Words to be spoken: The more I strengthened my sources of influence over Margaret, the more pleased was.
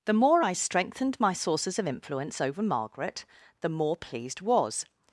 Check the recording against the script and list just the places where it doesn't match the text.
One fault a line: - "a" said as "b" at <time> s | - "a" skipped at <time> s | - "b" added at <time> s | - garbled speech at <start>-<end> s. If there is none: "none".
none